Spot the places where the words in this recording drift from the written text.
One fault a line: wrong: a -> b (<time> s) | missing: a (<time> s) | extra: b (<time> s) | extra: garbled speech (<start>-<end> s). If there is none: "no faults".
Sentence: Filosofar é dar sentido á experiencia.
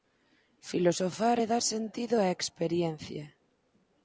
no faults